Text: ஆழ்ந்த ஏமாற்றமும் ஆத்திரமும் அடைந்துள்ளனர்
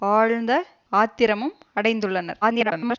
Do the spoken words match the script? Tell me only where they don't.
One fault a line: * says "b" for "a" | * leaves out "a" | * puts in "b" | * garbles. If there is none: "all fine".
* leaves out "ஏமாற்றமும்"
* garbles